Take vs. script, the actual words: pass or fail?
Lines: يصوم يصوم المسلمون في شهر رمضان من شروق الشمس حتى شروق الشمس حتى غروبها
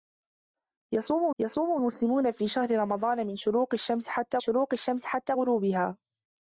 pass